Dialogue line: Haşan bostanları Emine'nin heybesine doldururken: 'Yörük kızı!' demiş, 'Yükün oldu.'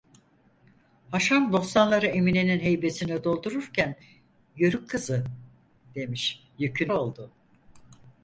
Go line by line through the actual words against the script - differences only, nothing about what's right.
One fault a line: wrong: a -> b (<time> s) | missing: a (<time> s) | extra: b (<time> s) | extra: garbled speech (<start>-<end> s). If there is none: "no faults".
no faults